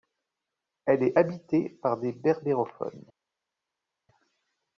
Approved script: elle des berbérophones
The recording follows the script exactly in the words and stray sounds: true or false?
false